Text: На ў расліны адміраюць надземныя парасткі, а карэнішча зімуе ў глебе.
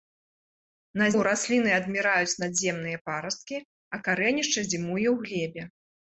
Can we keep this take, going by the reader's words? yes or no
yes